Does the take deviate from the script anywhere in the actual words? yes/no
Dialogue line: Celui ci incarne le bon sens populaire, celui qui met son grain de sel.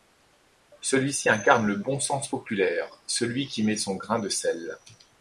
no